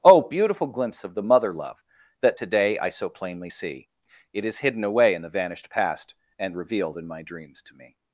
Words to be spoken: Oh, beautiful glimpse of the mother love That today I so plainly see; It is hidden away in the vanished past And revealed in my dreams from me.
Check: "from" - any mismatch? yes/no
yes